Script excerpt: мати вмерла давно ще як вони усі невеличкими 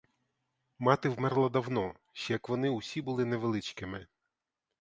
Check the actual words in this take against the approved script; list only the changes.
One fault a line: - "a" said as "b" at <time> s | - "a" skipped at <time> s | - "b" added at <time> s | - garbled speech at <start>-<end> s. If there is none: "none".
- "були" added at 3.0 s